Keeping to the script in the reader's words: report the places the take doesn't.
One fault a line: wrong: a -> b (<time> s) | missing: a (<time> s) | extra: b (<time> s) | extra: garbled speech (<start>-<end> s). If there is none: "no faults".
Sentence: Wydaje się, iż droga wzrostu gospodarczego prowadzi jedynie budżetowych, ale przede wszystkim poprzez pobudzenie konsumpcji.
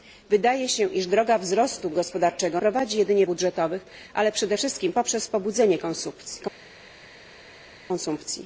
no faults